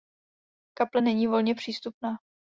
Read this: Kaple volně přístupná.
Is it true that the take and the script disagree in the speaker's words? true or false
true